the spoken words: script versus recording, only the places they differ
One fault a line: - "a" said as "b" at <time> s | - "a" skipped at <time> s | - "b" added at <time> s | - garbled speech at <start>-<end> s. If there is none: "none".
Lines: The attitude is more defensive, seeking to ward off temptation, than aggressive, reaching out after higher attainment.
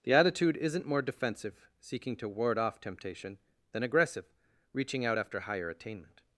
- "is" said as "isn't" at 0.6 s